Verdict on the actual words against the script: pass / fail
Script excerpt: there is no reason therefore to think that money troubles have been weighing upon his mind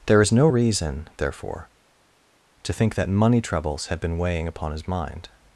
fail